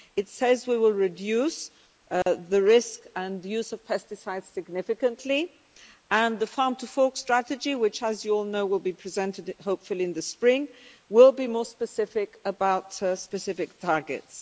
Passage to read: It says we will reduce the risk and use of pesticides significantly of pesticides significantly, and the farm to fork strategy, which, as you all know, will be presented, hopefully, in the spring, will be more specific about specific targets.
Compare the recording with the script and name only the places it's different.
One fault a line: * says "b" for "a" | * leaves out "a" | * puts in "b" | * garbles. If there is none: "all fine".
* leaves out "of pesticides significantly"